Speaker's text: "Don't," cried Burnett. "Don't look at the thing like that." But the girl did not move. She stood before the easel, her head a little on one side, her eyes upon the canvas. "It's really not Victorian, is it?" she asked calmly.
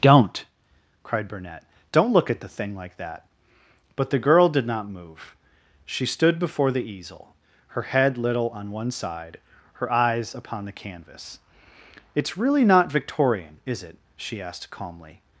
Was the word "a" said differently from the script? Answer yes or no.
yes